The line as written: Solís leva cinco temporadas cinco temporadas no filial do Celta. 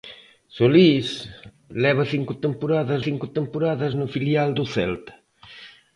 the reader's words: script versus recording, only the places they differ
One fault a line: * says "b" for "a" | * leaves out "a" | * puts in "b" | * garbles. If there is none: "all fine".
all fine